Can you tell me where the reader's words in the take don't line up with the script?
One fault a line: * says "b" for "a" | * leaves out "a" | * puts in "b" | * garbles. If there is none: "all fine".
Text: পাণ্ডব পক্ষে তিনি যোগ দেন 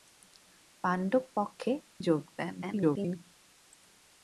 * leaves out "তিনি"
* garbles